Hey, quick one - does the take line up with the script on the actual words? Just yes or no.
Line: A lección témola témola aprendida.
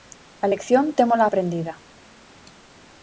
no